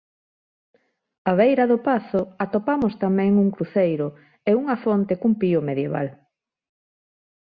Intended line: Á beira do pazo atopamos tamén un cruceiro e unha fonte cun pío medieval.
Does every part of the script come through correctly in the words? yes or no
yes